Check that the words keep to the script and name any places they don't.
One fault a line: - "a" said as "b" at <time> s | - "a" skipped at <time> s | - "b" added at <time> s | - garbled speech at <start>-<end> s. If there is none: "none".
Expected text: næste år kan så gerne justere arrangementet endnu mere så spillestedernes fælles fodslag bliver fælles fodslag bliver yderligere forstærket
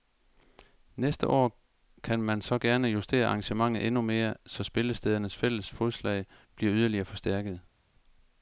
- "man" added at 2.2 s
- "fælles fodslag bliver" skipped at 6.7 s